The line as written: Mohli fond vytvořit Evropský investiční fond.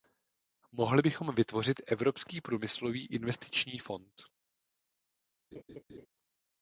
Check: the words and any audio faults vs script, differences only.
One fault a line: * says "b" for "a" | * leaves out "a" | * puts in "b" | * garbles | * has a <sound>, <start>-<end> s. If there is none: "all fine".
* says "bychom" for "fond"
* puts in "průmyslový"
* has a laugh, 5.5-6.1 s